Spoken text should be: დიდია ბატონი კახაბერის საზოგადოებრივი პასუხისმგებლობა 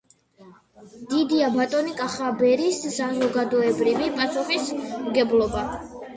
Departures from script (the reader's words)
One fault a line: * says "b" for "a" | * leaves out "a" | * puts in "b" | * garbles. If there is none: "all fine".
all fine